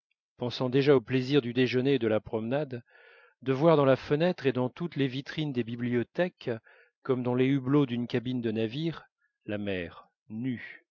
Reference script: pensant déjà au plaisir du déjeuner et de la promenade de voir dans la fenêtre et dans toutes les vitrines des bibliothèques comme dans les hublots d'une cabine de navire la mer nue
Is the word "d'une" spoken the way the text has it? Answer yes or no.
yes